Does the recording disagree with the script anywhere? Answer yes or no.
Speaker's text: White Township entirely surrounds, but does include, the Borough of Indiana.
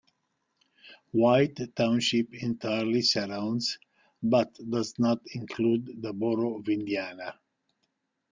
yes